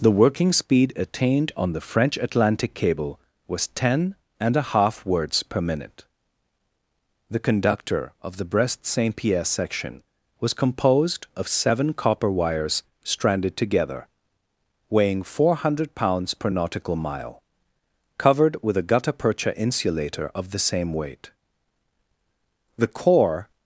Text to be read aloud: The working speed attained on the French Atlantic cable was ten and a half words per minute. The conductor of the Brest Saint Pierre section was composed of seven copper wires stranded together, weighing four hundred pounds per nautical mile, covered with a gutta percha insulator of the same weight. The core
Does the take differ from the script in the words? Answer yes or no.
no